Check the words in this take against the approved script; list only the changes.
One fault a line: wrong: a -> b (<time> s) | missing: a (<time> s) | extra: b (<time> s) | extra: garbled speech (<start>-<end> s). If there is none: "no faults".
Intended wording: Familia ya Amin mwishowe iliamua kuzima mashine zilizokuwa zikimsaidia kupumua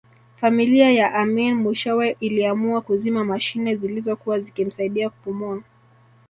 no faults